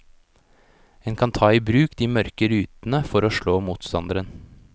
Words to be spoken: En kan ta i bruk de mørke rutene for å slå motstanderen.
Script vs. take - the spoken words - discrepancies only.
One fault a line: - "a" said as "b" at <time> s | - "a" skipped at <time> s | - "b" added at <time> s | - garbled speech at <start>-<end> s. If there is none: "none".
none